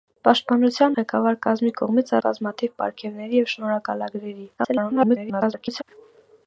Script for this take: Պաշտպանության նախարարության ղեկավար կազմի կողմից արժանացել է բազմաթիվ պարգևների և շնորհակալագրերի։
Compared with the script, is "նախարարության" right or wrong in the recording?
wrong